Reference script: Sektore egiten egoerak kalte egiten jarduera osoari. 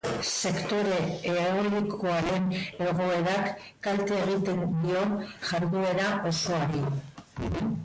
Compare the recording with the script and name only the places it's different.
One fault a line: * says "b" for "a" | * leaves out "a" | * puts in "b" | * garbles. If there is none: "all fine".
* says "eolikoaren" for "egiten"
* puts in "dio"